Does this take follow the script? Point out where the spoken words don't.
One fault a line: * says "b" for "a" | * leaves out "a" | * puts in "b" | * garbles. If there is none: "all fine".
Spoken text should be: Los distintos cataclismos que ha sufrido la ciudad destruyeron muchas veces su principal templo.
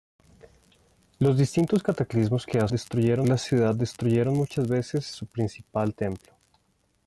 * says "destruyeron" for "sufrido"